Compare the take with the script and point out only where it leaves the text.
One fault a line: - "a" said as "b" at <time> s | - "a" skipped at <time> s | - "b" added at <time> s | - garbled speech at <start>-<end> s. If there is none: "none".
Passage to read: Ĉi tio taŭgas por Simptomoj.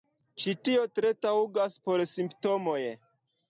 - "tre" added at 0.9 s